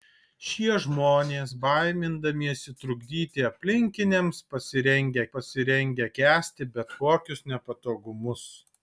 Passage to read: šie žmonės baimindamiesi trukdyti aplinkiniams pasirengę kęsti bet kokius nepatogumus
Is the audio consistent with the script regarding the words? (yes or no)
no